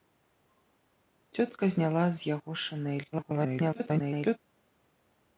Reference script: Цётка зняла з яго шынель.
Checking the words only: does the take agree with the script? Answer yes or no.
no